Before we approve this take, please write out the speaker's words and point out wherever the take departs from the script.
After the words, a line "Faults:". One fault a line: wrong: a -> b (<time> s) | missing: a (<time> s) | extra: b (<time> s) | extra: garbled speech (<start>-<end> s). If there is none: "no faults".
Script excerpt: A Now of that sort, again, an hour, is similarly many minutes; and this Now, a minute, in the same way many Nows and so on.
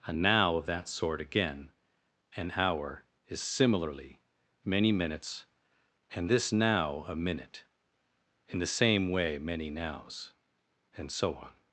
A Now of that sort, again, an hour, is similarly many minutes; and this Now, a minute, in the same way many Nows and so on.
Faults:
no faults